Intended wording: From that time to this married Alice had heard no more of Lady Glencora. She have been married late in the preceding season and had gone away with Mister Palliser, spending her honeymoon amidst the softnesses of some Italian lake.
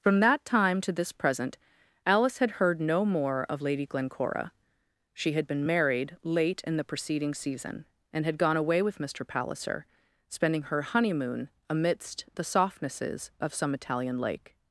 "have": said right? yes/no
no